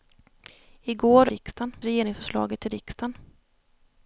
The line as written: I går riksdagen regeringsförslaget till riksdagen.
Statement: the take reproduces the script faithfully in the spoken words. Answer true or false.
true